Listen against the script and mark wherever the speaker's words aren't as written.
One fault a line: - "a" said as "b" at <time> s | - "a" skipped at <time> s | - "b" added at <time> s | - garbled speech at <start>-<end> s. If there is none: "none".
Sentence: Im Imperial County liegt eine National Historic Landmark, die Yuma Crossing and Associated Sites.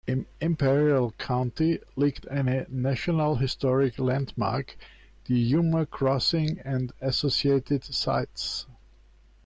none